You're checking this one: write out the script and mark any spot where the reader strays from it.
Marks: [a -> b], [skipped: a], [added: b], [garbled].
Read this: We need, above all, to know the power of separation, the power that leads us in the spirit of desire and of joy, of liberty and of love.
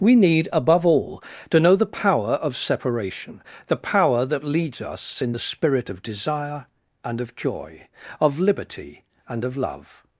We need, above all, to know the power of separation, the power that leads us in the spirit of desire and of joy, of liberty and of love.